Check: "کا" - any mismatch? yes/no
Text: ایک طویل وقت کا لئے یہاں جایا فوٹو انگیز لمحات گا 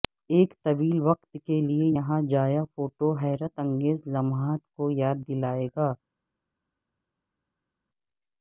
yes